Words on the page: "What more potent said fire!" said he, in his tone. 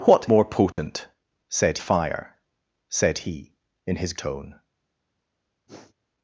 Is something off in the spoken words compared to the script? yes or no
no